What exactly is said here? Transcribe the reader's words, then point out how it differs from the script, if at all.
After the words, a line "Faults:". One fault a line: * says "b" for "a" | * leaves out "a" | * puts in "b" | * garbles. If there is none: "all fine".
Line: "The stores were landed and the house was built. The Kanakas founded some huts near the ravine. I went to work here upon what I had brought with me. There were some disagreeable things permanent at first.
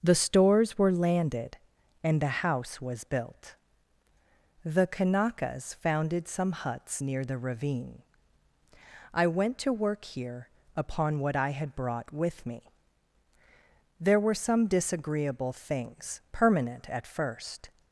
"The stores were landed and the house was built. The Kanakas founded some huts near the ravine. I went to work here upon what I had brought with me. There were some disagreeable things permanent at first.
Faults:
all fine